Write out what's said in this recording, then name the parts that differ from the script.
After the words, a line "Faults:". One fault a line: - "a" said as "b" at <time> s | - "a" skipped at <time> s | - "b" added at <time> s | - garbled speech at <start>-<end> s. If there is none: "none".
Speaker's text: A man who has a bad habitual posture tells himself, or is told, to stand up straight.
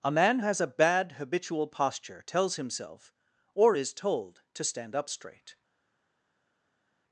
A man has a bad habitual posture tells himself, or is told, to stand up straight.
Faults:
- "who" skipped at 0.4 s